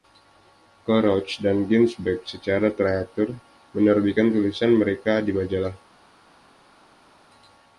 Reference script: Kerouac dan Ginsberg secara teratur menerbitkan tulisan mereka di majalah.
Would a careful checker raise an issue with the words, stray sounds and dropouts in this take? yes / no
no